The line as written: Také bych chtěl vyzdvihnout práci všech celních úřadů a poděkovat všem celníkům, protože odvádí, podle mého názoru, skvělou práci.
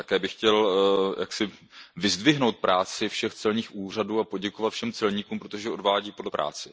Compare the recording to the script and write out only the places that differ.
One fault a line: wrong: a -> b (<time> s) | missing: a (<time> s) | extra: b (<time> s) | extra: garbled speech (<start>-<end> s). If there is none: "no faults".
missing: mého názoru skvělou (6.3 s)